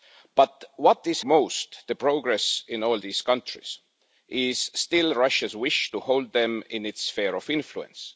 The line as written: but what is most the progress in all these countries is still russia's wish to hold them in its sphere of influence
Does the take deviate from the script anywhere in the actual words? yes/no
no